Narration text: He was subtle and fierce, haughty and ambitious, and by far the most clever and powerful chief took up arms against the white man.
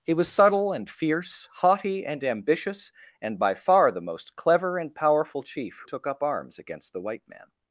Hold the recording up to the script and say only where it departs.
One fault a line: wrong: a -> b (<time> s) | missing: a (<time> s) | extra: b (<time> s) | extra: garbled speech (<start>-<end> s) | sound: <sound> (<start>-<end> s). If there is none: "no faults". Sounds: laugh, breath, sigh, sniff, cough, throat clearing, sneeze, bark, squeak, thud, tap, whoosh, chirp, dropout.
no faults